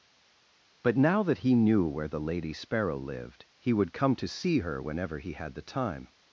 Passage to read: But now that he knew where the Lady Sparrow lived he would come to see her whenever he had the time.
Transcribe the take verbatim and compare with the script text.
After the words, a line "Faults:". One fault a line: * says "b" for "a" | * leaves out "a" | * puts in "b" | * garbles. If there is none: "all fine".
But now that he knew where the Lady Sparrow lived he would come to see her whenever he had the time.
Faults:
all fine